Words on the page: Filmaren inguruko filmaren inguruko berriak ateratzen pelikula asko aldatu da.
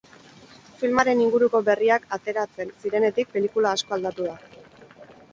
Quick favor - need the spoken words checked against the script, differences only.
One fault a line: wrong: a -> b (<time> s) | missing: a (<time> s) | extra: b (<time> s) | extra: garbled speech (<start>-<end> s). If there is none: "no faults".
missing: filmaren inguruko (1.6 s)
extra: zirenetik (2.9 s)